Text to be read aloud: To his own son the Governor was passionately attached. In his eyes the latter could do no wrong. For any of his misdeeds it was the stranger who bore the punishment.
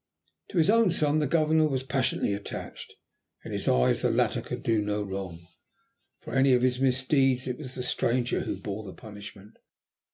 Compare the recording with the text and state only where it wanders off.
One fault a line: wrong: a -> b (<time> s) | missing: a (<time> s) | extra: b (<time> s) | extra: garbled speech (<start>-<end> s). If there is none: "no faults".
no faults